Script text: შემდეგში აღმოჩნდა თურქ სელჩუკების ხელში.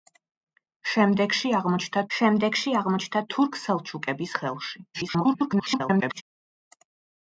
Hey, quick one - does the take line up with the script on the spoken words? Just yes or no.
no